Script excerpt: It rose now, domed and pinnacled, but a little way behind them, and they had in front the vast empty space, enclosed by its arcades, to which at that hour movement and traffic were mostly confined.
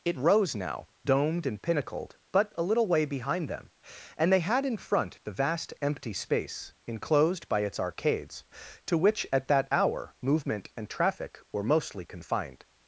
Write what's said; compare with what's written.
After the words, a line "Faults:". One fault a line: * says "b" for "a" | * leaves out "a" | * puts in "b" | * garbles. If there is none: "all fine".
It rose now, domed and pinnacled, but a little way behind them, and they had in front the vast empty space, enclosed by its arcades, to which at that hour movement and traffic were mostly confined.
Faults:
all fine